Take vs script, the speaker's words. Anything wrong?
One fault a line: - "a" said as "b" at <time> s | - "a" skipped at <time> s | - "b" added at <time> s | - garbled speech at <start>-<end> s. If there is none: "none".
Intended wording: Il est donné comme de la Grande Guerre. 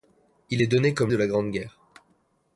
none